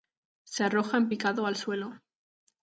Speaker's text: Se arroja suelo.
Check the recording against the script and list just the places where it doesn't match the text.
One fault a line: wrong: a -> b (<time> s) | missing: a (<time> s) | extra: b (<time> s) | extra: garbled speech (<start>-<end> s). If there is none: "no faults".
extra: en picado al (1.0 s)